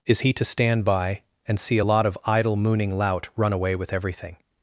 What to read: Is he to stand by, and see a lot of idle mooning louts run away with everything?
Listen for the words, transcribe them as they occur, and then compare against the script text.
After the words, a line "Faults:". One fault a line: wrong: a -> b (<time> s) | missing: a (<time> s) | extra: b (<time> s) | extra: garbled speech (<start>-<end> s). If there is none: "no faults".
Is he to stand by, and see a lot of idle mooning lout run away with everything?
Faults:
wrong: louts -> lout (3.0 s)